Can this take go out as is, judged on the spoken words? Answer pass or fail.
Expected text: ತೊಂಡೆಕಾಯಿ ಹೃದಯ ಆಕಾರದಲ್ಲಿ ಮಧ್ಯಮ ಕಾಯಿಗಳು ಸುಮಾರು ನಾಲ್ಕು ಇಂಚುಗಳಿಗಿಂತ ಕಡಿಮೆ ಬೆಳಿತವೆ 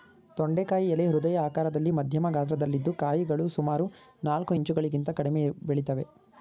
fail